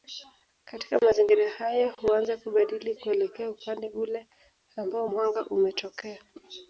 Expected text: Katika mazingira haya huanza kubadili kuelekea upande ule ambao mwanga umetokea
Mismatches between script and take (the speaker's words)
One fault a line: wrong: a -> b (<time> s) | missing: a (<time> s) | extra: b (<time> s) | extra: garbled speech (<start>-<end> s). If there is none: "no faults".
no faults